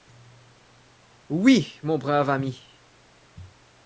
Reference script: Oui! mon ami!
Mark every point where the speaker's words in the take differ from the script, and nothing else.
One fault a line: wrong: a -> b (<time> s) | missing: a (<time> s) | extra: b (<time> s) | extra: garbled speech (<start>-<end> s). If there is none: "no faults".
extra: brave (2.0 s)